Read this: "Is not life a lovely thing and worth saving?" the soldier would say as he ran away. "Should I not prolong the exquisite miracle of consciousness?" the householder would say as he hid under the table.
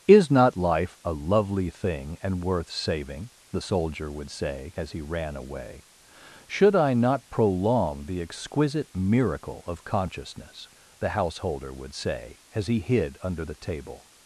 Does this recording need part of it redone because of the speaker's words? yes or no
no